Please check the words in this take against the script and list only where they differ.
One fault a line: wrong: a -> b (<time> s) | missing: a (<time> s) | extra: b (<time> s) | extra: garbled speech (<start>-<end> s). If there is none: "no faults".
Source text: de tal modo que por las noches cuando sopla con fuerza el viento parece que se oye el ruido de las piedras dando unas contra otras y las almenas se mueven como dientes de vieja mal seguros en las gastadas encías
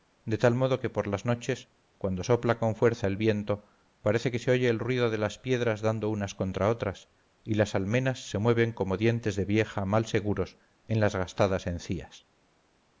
no faults